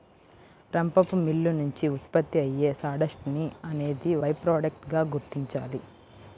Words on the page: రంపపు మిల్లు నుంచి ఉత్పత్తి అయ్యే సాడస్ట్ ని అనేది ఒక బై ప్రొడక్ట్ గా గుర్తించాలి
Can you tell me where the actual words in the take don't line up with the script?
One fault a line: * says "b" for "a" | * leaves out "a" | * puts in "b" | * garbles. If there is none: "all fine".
* leaves out "ఒక"